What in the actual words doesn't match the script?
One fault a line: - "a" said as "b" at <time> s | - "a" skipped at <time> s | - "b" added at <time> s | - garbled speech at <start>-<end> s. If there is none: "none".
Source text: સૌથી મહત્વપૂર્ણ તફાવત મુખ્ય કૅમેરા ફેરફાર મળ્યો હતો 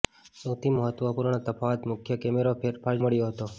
none